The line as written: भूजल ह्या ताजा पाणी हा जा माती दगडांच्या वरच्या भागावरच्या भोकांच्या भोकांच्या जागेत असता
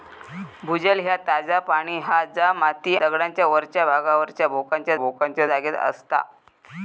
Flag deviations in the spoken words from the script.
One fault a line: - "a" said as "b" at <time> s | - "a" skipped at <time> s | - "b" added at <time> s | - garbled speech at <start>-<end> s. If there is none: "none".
none